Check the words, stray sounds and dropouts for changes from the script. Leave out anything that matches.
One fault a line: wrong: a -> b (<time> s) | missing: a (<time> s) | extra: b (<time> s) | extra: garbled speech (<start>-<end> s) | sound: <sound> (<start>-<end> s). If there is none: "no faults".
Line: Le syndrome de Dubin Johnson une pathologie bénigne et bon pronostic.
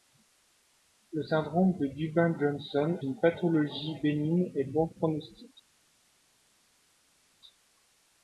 no faults